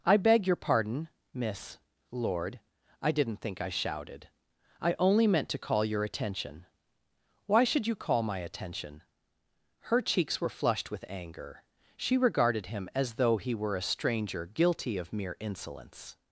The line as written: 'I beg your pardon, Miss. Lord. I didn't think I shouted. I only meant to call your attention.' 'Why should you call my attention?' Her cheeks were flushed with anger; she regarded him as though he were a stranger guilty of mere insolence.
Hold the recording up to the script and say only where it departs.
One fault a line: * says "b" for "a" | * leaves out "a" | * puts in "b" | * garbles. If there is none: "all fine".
all fine